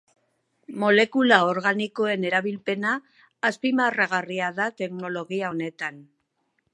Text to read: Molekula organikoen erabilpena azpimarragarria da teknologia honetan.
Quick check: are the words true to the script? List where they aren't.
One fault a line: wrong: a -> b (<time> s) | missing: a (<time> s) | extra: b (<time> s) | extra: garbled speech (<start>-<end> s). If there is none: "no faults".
no faults